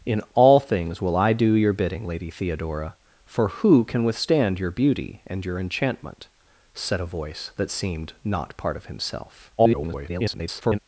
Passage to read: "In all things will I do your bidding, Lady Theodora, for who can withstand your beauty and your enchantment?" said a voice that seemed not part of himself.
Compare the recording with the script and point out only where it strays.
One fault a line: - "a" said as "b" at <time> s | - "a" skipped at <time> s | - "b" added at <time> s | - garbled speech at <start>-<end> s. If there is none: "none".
- garbled speech at 9.6-10.8 s